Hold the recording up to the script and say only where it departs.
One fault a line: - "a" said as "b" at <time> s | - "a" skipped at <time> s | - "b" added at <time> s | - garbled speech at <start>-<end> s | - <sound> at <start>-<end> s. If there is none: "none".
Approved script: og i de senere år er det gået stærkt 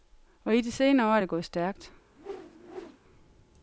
- whoosh at 2.2-3.0 s